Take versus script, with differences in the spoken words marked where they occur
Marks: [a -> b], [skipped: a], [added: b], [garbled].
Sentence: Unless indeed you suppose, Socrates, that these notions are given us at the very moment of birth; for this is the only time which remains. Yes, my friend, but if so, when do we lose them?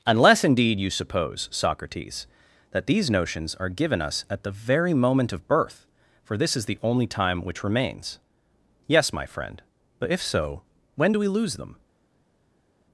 Unless indeed you suppose, Socrates, that these notions are given us at the very moment of birth; for this is the only time which remains. Yes, my friend, but if so, when do we lose them?